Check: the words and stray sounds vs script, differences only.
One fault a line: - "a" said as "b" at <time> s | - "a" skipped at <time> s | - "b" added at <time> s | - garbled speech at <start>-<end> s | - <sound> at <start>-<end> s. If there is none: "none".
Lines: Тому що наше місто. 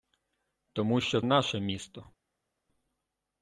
none